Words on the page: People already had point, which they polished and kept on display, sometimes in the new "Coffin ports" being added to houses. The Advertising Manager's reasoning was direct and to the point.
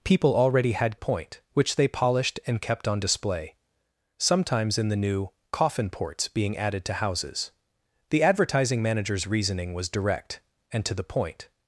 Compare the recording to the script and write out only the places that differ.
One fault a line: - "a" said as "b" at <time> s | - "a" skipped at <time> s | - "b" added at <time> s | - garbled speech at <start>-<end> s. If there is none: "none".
none